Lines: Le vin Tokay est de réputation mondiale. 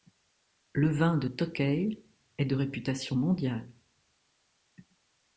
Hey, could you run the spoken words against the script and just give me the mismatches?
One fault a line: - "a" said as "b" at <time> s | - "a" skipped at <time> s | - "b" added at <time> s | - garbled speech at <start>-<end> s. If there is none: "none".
- "de" added at 1.1 s